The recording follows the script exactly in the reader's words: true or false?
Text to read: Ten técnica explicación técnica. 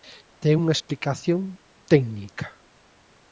false